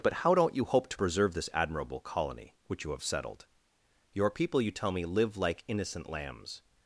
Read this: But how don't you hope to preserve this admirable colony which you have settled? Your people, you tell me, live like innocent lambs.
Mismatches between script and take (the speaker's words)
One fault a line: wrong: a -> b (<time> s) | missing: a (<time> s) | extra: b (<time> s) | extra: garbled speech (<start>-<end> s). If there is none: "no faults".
no faults